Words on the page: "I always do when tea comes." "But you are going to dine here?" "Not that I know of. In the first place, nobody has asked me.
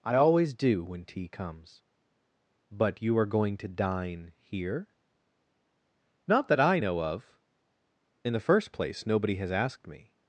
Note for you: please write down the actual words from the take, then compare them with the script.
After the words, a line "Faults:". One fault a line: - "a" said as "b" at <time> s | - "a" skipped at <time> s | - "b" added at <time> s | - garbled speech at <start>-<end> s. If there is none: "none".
"I always do when tea comes." "But you are going to dine here?" "Not that I know of. In the first place, nobody has asked me.
Faults:
none